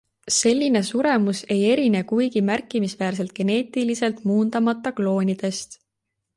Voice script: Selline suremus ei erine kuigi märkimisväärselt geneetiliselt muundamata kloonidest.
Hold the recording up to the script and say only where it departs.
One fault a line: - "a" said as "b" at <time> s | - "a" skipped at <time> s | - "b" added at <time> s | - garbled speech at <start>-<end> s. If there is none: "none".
none